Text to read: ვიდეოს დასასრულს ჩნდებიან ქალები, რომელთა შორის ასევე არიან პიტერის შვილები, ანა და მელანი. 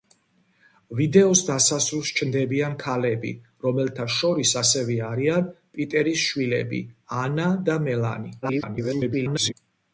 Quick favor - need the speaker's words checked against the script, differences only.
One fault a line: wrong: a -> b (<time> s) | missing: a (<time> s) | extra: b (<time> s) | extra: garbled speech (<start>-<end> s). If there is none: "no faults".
extra: garbled speech (8.4-9.5 s)